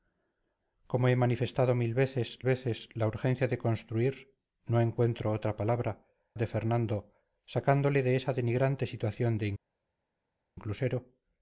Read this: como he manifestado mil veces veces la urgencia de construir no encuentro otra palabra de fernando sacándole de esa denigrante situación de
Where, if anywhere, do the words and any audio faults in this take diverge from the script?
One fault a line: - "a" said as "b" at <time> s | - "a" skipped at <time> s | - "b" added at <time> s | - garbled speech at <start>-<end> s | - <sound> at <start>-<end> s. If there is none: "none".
none